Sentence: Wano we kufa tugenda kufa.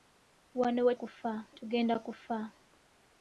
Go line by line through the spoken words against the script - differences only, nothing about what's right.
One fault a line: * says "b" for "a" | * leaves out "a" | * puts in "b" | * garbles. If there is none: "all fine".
all fine